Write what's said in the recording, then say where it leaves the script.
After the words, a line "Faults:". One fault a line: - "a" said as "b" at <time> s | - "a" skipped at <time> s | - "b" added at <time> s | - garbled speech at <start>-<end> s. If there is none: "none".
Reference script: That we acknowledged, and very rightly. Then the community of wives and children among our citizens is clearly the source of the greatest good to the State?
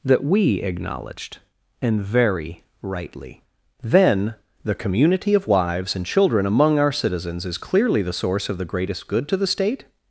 That we acknowledged, and very rightly. Then the community of wives and children among our citizens is clearly the source of the greatest good to the State?
Faults:
none